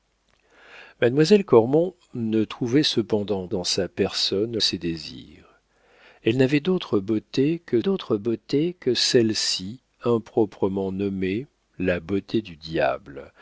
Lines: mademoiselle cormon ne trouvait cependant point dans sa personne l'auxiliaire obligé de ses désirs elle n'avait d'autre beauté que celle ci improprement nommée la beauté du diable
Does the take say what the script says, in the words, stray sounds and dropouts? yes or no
no